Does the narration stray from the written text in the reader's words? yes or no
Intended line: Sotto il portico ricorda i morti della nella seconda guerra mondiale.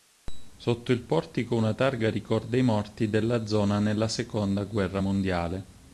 yes